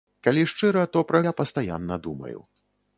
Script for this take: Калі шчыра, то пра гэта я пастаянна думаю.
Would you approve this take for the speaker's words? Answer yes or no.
no